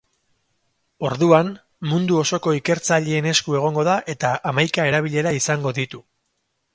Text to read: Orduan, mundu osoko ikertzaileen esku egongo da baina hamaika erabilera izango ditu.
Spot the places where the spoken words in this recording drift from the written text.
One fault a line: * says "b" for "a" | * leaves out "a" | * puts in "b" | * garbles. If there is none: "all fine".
* says "eta" for "baina"